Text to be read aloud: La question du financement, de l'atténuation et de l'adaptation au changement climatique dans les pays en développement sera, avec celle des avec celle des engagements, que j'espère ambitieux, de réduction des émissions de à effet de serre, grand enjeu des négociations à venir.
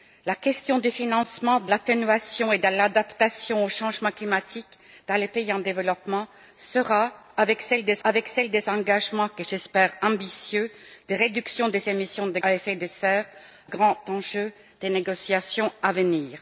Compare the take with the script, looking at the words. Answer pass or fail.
pass